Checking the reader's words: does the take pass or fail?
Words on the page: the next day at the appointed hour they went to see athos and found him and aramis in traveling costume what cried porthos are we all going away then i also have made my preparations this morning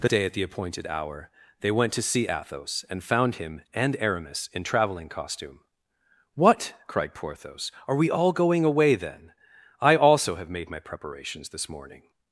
fail